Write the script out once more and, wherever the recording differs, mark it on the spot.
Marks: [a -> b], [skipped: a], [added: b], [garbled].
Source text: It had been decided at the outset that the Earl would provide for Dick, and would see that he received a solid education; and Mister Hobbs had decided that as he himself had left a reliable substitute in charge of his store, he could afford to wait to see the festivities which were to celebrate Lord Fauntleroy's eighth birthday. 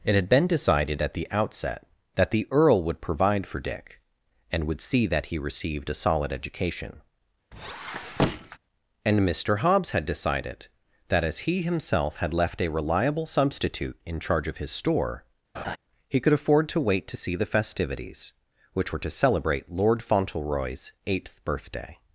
It had been decided at the outset that the Earl would provide for Dick, and would see that he received a solid education; and Mister Hobbs had decided that as he himself had left a reliable substitute in charge of his store, he could afford to wait to see the festivities which were to celebrate Lord Fauntleroy's eighth birthday.